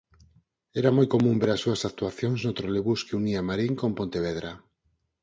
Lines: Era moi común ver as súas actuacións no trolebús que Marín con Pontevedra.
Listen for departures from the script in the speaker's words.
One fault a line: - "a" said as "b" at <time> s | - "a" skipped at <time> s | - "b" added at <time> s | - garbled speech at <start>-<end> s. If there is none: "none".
- "unía" added at 3.2 s